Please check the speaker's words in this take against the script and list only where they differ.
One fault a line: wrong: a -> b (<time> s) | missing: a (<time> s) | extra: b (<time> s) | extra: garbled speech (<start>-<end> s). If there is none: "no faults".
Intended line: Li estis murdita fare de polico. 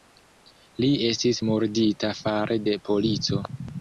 no faults